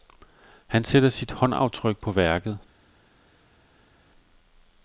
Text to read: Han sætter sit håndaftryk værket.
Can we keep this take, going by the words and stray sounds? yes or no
no